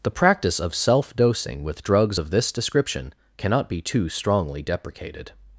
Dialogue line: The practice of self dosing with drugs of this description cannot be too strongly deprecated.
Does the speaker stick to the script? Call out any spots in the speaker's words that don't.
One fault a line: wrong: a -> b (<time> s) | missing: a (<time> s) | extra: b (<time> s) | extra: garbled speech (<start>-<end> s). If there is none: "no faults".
no faults